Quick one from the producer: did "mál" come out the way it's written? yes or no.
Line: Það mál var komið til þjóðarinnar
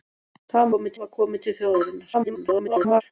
no